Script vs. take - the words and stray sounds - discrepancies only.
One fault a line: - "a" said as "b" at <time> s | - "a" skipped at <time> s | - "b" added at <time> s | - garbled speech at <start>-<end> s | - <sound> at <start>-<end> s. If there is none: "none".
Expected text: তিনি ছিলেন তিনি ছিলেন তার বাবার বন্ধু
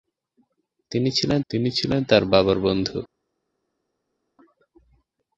none